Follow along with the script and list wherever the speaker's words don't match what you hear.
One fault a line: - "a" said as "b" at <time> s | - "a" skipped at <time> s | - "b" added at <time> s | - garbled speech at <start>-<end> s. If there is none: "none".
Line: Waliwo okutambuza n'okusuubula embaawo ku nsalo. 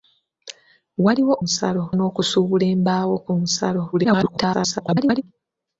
- "okutambuza" said as "nsalo" at 1.4 s
- garbled speech at 3.9-5.2 s